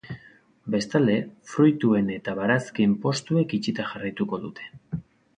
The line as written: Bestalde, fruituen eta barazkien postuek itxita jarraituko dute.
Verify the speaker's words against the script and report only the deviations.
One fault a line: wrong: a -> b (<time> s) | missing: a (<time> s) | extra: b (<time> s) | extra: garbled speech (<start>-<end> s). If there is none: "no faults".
no faults